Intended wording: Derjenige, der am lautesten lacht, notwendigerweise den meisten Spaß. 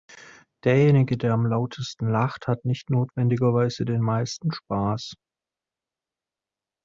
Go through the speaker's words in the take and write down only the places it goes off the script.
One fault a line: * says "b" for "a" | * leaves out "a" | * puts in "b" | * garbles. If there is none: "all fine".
* puts in "hat nicht"